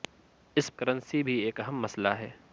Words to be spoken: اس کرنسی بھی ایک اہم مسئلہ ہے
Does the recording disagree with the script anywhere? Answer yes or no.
no